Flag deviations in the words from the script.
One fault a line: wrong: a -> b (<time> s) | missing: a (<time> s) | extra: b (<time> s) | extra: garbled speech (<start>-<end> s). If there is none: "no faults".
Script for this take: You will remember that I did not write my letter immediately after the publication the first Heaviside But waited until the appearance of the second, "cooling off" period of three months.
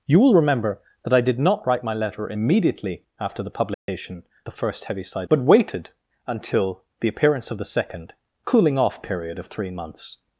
no faults